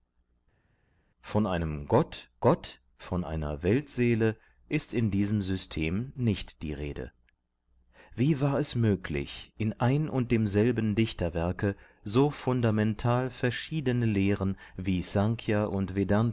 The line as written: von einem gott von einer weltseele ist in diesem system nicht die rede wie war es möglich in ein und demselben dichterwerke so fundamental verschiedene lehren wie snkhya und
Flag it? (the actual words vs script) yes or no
yes